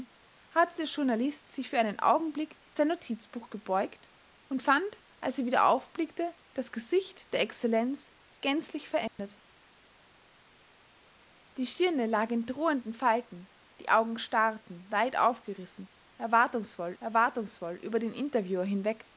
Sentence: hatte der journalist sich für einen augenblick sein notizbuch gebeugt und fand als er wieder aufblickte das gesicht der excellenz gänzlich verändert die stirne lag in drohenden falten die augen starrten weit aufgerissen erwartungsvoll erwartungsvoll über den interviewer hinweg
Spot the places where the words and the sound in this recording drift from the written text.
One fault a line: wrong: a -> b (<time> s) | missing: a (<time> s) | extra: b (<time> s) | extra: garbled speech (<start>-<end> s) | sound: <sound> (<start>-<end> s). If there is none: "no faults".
sound: dropout (9.1-9.2 s)